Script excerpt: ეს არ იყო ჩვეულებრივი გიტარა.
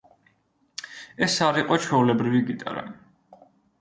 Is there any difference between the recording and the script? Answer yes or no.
no